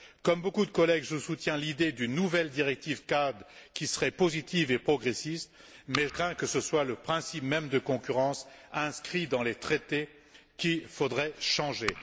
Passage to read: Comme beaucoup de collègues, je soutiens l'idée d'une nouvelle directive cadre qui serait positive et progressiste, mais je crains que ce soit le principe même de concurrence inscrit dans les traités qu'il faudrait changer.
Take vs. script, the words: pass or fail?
fail